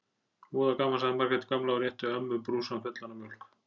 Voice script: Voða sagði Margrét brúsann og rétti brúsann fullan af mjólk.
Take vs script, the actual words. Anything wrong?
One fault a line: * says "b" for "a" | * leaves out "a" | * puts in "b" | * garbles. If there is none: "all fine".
* puts in "gaman"
* says "gamla" for "brúsann"
* puts in "ömmu"